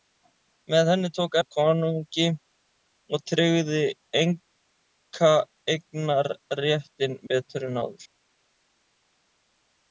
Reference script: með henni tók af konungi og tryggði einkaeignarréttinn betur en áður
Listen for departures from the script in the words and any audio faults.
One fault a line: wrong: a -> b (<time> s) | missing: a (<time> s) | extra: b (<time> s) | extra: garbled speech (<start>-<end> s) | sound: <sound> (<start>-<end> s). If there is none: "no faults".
no faults